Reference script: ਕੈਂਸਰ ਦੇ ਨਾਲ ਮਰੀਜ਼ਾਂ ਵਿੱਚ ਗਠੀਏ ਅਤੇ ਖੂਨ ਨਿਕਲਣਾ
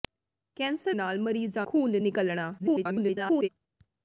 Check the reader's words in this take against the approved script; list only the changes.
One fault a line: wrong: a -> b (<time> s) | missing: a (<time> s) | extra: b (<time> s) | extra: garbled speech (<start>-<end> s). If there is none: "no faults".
missing: ਦੇ (0.9 s)
missing: ਵਿੱਚ ਗਠੀਏ ਅਤੇ (1.7 s)
extra: garbled speech (2.6-3.5 s)